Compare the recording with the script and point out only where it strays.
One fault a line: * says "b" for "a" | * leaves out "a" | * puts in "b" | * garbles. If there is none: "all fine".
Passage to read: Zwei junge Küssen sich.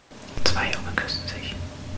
all fine